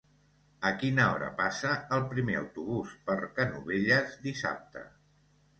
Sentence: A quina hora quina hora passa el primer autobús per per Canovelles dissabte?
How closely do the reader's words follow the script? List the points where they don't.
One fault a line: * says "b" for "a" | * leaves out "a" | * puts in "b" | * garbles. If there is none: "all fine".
* leaves out "quina hora"
* leaves out "per"